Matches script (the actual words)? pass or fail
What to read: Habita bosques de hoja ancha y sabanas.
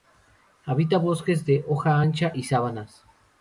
pass